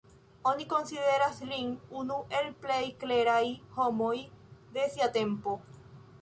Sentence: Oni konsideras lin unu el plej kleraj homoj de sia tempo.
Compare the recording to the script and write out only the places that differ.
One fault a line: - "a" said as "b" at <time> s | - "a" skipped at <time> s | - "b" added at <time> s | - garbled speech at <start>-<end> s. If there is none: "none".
none